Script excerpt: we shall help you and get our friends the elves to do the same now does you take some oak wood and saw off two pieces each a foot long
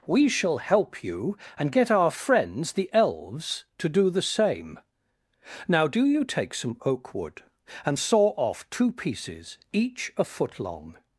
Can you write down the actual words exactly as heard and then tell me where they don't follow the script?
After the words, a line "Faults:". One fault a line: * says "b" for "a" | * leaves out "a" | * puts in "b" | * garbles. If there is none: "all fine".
we shall help you and get our friends the elves to do the same now do you take some oak wood and saw off two pieces each a foot long
Faults:
* says "do" for "does"